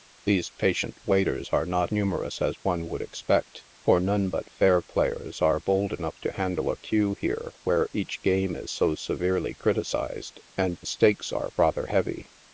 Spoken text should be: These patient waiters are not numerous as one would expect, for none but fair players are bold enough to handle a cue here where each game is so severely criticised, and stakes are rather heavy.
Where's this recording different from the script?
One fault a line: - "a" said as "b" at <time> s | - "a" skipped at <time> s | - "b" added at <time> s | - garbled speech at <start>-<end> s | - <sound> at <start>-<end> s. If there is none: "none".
none